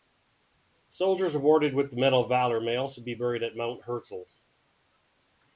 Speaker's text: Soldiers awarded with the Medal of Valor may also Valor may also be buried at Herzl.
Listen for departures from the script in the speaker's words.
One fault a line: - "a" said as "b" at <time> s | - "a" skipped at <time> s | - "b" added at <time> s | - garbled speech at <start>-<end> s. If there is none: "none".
- "Valor may also" skipped at 3.0 s
- "Mount" added at 3.5 s